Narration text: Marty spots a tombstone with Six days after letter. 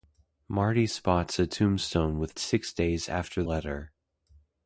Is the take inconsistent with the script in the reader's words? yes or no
no